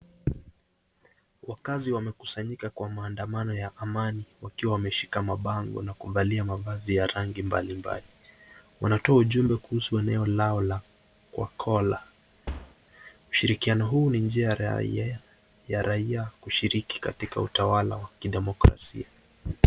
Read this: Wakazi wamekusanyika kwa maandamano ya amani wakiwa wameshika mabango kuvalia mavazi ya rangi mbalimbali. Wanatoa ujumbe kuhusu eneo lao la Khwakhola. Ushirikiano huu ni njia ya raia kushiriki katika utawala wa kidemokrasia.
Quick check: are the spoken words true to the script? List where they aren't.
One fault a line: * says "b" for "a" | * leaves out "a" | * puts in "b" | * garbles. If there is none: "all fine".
* puts in "na"